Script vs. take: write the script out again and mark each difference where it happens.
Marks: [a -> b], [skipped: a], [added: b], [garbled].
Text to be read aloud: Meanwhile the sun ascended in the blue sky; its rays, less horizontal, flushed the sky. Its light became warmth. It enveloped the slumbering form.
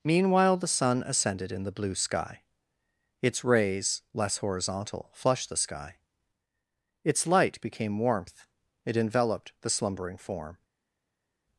Meanwhile the sun ascended in the blue sky; its rays, less horizontal, flushed the sky. Its light became warmth. It enveloped the slumbering form.